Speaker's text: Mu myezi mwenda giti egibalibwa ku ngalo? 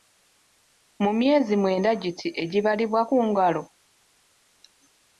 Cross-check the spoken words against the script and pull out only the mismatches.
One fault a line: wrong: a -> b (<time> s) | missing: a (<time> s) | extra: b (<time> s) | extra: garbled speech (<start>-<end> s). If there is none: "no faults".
no faults